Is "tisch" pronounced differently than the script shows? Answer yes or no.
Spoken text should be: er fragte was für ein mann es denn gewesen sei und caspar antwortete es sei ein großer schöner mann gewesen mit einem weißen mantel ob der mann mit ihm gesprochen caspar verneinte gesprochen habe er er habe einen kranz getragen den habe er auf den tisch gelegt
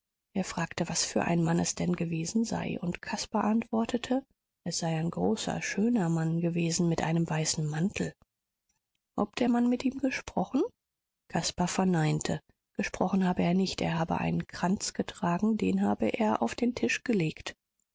no